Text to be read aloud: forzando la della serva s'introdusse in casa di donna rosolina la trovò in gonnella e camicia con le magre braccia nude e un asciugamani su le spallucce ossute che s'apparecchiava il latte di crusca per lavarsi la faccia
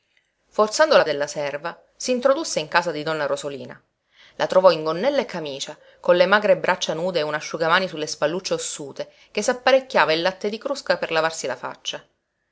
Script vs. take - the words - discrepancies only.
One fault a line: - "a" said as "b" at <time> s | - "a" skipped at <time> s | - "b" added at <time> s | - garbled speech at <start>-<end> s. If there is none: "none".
none